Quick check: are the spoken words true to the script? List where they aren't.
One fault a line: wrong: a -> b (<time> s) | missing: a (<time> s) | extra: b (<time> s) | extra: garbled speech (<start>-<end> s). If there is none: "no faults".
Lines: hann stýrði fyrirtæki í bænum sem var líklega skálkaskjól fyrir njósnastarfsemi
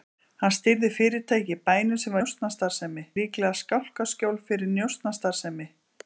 wrong: var -> njósnastarfsemi (2.2 s)